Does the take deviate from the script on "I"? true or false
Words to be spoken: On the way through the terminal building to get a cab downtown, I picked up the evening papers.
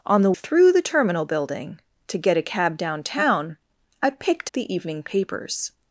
false